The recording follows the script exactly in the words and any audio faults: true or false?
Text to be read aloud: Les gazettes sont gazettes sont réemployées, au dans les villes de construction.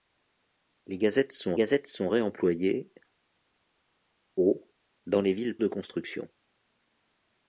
true